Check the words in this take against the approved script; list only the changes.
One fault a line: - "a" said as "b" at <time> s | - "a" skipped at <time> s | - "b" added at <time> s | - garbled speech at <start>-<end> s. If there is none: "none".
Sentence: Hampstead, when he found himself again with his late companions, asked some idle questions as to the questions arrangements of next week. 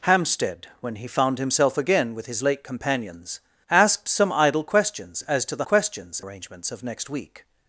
none